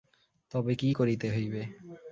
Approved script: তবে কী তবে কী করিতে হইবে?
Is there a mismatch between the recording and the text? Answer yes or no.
yes